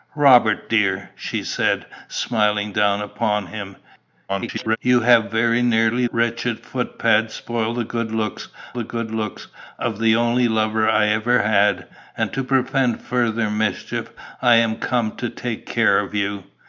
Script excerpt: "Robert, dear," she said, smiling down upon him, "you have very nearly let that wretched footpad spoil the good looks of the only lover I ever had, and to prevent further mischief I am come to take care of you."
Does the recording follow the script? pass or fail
fail